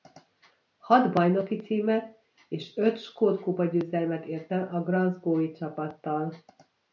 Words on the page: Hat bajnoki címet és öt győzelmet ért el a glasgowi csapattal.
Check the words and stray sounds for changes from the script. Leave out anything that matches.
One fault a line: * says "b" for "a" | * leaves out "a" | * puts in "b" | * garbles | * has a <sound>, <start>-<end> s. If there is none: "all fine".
* puts in "skót kupa"